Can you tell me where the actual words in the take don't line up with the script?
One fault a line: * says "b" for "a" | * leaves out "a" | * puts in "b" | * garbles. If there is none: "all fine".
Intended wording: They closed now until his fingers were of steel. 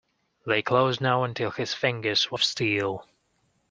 all fine